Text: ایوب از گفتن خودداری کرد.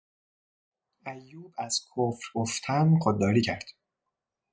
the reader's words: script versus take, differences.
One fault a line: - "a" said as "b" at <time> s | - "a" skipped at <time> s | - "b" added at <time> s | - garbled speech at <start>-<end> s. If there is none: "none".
- "کفر" added at 1.8 s